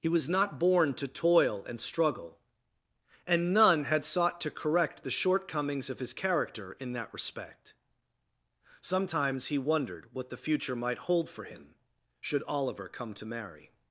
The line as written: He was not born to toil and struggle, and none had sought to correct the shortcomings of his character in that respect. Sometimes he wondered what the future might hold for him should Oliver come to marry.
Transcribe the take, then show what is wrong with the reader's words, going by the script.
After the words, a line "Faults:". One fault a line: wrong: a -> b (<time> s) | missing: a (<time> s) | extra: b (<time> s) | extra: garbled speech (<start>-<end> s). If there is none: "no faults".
He was not born to toil and struggle, and none had sought to correct the shortcomings of his character in that respect. Sometimes he wondered what the future might hold for him should Oliver come to marry.
Faults:
no faults